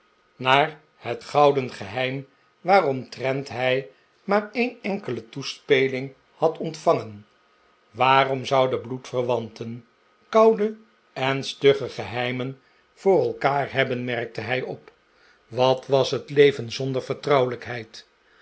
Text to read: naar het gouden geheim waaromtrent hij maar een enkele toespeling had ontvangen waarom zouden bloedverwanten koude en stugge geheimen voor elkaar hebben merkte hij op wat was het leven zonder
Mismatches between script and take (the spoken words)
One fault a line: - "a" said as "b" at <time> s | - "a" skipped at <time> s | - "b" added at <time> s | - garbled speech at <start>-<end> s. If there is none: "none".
none